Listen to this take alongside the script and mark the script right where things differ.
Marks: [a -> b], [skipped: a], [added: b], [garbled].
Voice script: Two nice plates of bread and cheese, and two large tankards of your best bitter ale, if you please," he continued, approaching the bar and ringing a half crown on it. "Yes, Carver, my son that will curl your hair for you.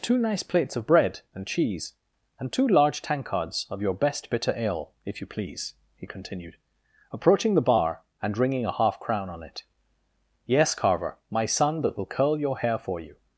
Two nice plates of bread and cheese, and two large tankards of your best bitter ale, if you please," he continued, approaching the bar and ringing a half crown on it. "Yes, Carver, my son that will curl your hair for you.